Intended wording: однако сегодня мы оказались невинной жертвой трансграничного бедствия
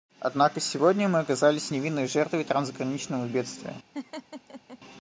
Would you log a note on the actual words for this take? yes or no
no